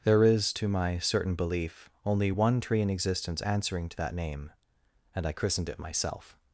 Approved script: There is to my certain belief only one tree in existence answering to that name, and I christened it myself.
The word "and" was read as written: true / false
true